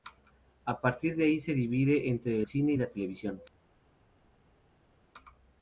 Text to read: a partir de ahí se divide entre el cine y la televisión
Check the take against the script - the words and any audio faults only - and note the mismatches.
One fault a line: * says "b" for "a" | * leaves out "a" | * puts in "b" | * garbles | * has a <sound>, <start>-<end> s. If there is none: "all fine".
* leaves out "el"